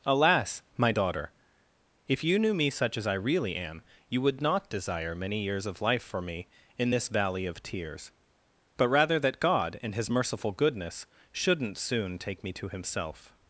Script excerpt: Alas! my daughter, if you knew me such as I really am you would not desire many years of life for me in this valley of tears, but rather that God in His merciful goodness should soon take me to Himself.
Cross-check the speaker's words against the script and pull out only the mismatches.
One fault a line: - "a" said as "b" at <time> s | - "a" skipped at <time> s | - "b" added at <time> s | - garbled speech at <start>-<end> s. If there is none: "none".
- "should" said as "shouldn't" at 11.3 s